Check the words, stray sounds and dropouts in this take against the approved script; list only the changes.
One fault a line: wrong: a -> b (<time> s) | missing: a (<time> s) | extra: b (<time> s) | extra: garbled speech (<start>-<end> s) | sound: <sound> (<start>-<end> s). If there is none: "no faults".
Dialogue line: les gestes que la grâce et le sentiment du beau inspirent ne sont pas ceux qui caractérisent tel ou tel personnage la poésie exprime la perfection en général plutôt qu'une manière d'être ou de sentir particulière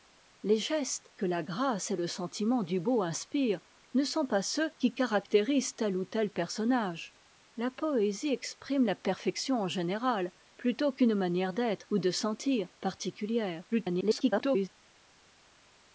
extra: garbled speech (13.7-14.7 s)